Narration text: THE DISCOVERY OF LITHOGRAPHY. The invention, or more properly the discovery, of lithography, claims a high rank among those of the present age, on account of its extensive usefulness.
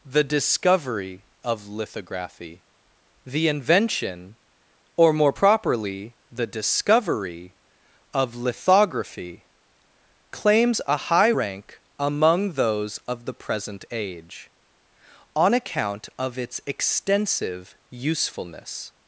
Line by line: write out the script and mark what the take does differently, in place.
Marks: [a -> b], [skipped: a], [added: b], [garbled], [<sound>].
THE DISCOVERY OF LITHOGRAPHY. The invention, or more properly the discovery, of lithography, claims a high rank among those of the present age, on account of its extensive usefulness.